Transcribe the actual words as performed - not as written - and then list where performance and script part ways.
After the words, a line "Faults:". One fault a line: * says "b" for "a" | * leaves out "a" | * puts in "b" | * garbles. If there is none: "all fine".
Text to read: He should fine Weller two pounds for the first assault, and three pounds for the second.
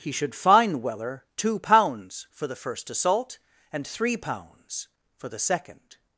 He should fine Weller two pounds for the first assault, and three pounds for the second.
Faults:
all fine